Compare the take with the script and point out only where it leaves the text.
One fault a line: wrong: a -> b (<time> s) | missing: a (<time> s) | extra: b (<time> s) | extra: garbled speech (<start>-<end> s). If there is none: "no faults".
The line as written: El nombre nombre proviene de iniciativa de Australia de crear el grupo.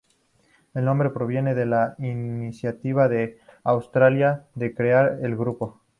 missing: nombre (1.1 s)
extra: la (1.7 s)